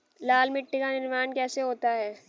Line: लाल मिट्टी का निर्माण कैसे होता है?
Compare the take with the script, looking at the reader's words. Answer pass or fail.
pass